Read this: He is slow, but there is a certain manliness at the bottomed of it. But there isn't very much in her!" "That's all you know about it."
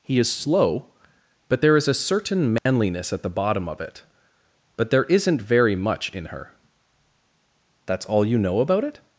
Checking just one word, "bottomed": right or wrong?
wrong